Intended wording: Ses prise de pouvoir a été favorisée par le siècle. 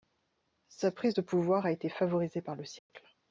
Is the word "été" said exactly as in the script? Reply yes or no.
yes